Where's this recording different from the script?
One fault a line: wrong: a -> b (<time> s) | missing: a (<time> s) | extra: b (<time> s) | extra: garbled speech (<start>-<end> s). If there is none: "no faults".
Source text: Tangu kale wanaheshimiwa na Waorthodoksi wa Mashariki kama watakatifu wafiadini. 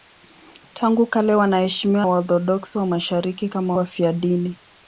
missing: na (2.0 s)
missing: watakatifu (3.7 s)